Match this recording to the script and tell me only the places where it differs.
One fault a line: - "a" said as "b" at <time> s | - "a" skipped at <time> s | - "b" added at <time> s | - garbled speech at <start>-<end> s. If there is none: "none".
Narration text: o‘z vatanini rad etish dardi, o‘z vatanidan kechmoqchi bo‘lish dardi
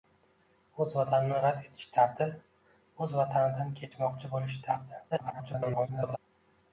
- garbled speech at 5.1-6.2 s